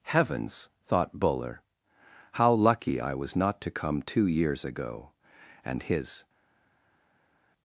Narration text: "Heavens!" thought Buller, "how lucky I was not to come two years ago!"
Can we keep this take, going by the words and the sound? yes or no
no